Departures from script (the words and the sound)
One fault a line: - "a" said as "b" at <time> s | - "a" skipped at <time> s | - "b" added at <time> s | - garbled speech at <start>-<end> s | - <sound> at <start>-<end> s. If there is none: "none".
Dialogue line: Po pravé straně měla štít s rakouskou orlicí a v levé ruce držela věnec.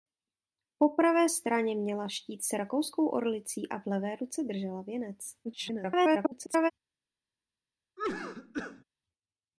- garbled speech at 5.4-6.7 s
- cough at 8.0-8.8 s